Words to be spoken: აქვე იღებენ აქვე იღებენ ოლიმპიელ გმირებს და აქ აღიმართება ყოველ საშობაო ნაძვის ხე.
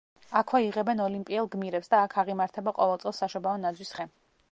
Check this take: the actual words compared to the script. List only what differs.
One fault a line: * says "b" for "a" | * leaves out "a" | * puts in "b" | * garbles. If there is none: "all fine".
* leaves out "აქვე იღებენ"
* puts in "წელს"